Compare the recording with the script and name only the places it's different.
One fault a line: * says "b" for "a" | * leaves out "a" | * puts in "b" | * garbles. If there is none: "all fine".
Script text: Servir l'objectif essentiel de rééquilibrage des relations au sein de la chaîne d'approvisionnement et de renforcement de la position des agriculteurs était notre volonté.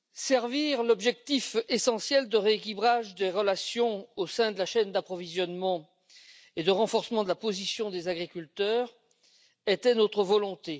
all fine